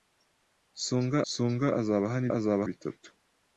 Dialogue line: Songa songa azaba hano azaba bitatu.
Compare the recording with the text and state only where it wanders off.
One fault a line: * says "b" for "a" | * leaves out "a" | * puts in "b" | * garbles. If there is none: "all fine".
all fine